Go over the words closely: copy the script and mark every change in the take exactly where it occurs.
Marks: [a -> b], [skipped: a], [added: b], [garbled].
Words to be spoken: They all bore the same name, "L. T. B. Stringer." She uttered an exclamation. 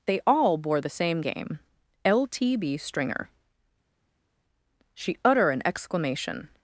They all bore the same [name, -> game] "L. T. B. Stringer." She [uttered -> utter] an exclamation.